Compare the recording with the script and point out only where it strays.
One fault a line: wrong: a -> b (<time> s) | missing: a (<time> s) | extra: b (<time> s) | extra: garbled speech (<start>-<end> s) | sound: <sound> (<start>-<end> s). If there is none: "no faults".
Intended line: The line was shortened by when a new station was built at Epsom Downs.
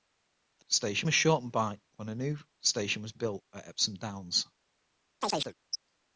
wrong: line -> station (0.7 s)
sound: chirp (5.2-5.5 s)